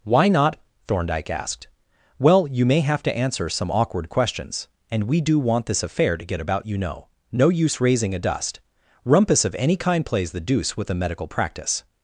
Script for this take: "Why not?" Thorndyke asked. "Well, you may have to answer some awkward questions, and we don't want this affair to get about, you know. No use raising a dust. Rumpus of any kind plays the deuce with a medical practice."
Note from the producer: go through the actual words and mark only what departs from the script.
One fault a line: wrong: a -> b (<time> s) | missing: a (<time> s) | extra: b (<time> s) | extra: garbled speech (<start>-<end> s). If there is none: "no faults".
wrong: don't -> do (5.2 s)